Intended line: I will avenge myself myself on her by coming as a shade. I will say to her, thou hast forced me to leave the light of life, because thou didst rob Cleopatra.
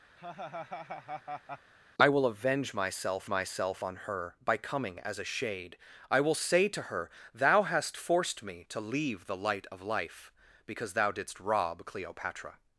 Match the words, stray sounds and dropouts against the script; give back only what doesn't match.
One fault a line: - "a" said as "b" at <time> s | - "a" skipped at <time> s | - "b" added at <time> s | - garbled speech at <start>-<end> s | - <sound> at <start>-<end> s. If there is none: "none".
- laugh at 0.2-1.7 s